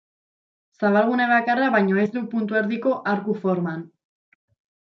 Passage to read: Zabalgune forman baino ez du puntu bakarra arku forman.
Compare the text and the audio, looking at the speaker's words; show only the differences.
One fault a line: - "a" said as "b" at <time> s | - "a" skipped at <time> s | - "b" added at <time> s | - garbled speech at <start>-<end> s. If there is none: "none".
- "forman" said as "bakarra" at 1.3 s
- "bakarra" said as "erdiko" at 2.6 s